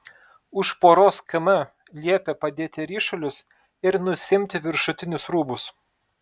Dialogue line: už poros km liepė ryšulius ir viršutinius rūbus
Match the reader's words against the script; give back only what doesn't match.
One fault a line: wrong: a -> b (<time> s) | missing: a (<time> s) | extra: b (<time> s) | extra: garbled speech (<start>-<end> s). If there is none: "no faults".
extra: padėti (2.5 s)
extra: nusiimti (4.1 s)